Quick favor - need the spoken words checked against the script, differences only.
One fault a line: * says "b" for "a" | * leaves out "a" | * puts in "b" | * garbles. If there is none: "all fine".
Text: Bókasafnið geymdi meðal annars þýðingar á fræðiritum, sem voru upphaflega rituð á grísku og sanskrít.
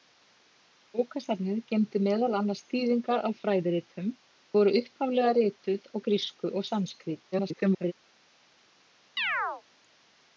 * leaves out "sem"
* garbles